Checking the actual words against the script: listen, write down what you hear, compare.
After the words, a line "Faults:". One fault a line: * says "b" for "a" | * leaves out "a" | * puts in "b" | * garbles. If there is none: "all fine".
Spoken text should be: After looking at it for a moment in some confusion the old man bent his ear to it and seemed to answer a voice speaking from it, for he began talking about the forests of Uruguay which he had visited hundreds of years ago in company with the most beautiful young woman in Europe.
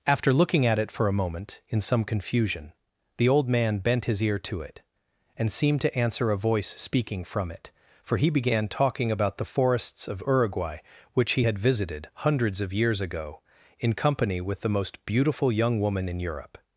After looking at it for a moment in some confusion the old man bent his ear to it and seemed to answer a voice speaking from it, for he began talking about the forests of Uruguay which he had visited hundreds of years ago in company with the most beautiful young woman in Europe.
Faults:
all fine